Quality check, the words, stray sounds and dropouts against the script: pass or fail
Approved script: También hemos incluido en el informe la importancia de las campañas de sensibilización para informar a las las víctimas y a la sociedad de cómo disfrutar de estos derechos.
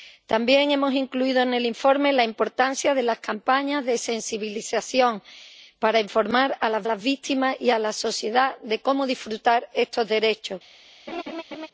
fail